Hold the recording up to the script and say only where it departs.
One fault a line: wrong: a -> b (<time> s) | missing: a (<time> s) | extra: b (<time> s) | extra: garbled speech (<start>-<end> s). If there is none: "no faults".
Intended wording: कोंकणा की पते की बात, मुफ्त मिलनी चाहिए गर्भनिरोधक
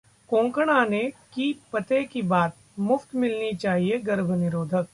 extra: ने (0.8 s)